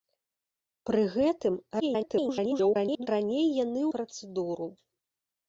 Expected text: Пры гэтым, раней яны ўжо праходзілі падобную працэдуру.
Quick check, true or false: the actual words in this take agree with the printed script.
false